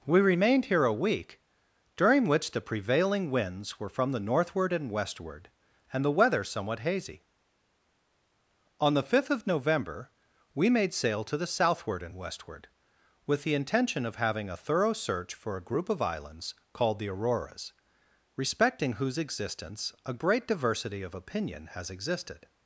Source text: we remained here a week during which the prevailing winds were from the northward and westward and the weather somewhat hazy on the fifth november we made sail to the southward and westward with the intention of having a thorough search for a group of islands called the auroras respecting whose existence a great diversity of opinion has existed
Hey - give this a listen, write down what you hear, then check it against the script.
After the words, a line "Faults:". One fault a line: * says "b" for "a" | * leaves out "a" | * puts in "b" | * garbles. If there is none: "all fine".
we remained here a week during which the prevailing winds were from the northward and westward and the weather somewhat hazy on the fifth of november we made sail to the southward and westward with the intention of having a thorough search for a group of islands called the auroras respecting whose existence a great diversity of opinion has existed
Faults:
* puts in "of"